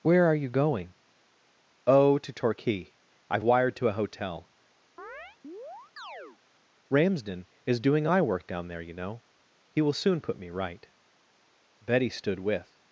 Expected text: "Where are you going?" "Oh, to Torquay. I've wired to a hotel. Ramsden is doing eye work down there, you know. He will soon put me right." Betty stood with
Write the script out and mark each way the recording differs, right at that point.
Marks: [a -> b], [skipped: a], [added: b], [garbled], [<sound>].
"Where are you going?" "Oh, to Torquay. I've wired to a hotel. [chirp] Ramsden is doing eye work down there, you know. He will soon put me right." Betty stood with